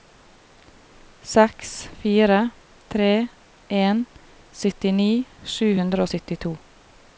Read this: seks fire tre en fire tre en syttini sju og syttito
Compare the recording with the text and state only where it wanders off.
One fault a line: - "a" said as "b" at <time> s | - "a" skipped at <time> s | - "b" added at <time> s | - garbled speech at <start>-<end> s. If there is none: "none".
- "fire tre en" skipped at 4.0 s
- "hundre" added at 5.8 s